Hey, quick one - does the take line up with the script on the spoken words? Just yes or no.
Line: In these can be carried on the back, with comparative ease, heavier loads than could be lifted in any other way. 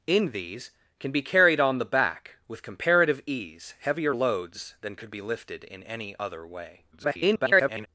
no